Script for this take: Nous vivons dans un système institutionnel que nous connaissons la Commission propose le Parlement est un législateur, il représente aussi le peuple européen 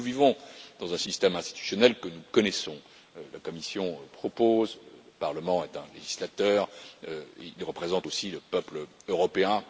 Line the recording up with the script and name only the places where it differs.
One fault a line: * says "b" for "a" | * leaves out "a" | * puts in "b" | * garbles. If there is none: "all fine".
all fine